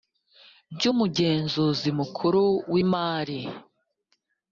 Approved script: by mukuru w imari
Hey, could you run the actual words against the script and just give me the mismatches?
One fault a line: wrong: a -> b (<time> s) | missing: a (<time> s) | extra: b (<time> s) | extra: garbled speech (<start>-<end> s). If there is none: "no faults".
extra: umugenzuzi (0.9 s)